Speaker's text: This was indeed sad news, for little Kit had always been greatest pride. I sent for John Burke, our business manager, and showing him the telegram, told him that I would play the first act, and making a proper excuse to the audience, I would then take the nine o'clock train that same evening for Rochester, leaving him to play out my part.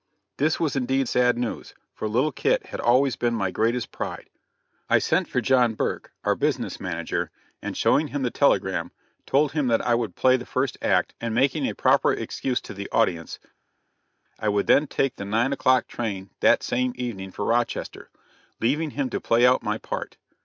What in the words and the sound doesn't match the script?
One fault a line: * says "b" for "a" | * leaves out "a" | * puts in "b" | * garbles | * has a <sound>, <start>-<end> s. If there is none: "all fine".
* puts in "my"